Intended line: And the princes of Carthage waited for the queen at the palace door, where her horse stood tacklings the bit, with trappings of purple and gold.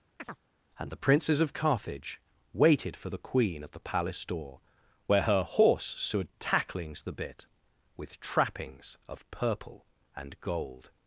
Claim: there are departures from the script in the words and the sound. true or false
true